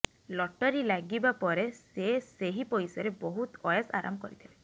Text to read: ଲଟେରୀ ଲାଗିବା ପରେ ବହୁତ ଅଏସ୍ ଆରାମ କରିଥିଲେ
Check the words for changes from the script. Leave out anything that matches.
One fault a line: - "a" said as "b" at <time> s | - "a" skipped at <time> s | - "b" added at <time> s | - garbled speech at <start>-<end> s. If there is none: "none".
- "ସେ ସେହି ପଇସାରେ" added at 1.8 s